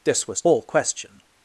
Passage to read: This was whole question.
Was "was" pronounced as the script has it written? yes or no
yes